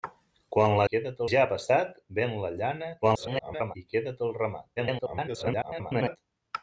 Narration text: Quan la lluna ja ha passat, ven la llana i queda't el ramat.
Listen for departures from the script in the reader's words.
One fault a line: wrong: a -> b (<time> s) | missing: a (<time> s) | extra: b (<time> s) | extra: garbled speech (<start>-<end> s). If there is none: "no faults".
wrong: lluna -> queda't (0.9 s)
extra: garbled speech (3.0-3.8 s)
extra: garbled speech (4.8-6.2 s)